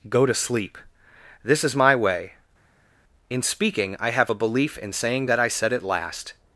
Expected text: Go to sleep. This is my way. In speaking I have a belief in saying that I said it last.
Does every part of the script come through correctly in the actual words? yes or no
yes